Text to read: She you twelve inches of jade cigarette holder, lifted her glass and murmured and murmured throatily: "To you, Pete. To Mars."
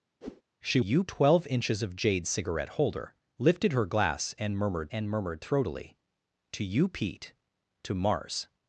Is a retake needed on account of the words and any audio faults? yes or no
yes